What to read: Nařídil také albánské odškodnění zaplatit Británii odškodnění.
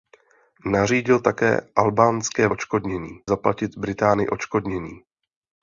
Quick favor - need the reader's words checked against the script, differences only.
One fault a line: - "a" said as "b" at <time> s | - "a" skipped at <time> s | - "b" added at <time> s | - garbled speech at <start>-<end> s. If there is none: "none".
none